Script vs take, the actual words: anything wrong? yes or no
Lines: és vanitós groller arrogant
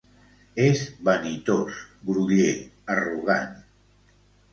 no